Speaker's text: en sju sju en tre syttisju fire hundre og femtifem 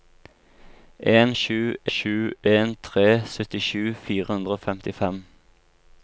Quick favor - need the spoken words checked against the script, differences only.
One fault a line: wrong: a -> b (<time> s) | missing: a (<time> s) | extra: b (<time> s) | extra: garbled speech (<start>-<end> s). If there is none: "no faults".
no faults